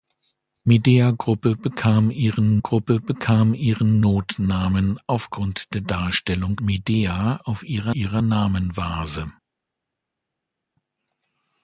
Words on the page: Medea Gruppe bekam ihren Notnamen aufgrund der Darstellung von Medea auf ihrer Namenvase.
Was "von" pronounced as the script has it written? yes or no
no